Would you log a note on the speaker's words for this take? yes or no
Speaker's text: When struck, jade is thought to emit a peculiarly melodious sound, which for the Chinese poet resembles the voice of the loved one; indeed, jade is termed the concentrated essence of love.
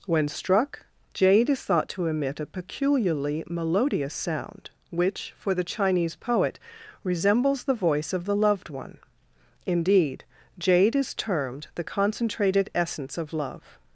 no